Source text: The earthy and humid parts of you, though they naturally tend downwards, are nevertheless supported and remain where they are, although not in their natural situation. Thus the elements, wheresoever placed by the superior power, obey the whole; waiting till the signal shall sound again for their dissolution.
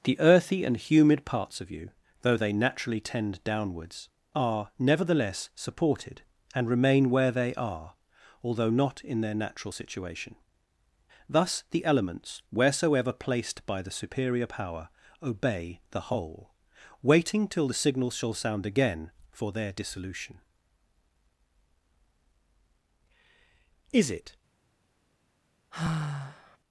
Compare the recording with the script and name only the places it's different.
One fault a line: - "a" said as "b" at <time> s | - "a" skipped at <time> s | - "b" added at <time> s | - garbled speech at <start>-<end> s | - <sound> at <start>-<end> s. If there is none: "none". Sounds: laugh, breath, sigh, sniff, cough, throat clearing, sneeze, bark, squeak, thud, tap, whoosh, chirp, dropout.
- "Is it" added at 23.9 s
- sigh at 25.7-26.6 s